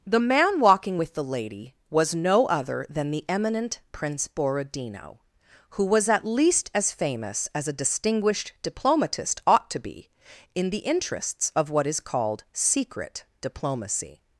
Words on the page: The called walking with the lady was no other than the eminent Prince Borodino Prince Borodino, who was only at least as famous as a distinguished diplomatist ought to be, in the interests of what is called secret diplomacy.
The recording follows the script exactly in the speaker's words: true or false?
false